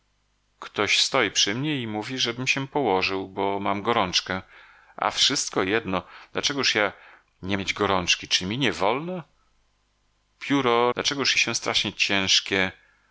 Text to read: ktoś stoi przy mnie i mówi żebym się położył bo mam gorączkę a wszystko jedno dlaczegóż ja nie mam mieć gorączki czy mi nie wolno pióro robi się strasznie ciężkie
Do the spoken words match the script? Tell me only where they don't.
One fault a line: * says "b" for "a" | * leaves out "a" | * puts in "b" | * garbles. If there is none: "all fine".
* leaves out "mam"
* says "dlaczegóż" for "robi"